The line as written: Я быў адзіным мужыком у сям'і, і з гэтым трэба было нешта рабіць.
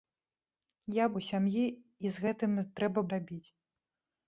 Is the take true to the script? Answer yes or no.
no